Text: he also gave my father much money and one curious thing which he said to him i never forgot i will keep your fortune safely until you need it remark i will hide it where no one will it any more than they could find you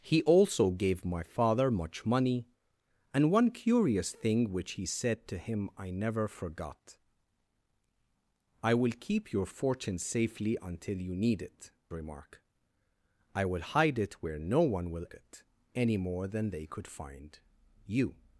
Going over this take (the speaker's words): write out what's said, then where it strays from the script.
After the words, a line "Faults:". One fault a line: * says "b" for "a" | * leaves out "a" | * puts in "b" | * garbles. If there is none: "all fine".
he also gave my father much money and one curious thing which he said to him i never forgot i will keep your fortune safely until you need it remark i will hide it where no one will it any more than they could find you
Faults:
all fine